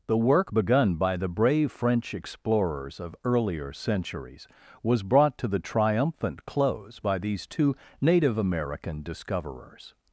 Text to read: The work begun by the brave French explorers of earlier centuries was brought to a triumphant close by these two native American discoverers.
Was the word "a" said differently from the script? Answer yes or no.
yes